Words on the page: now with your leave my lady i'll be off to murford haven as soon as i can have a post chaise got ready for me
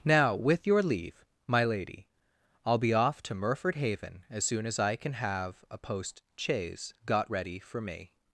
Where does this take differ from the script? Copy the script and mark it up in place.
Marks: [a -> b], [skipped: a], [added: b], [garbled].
now with your leave my lady i'll be off to murford haven as soon as i can have a post chaise got ready for me